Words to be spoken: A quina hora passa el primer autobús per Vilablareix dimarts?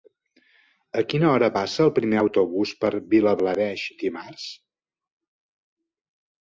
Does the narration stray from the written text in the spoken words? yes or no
no